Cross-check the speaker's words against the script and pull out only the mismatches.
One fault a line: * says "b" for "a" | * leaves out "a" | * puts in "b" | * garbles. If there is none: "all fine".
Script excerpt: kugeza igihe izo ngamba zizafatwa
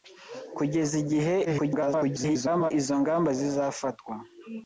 * garbles